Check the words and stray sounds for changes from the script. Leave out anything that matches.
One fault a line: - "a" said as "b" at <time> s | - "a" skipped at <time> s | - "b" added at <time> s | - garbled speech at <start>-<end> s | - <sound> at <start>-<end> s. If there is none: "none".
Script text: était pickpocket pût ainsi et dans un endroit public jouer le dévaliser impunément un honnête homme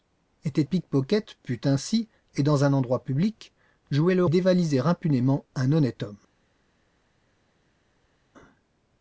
none